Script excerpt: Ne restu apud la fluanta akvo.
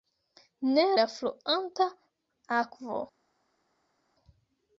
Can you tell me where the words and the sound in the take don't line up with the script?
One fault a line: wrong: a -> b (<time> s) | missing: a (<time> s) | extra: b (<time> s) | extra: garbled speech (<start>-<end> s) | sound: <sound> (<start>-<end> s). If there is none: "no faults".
missing: restu apud (0.8 s)